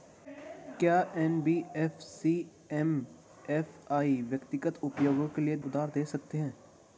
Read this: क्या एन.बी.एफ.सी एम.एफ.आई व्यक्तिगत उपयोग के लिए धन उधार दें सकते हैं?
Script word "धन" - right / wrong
wrong